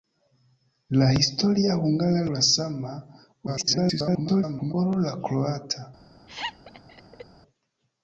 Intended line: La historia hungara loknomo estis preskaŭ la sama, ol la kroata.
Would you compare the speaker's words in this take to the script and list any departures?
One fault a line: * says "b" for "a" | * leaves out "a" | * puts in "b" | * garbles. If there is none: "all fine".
* leaves out "loknomo estis preskaŭ"
* garbles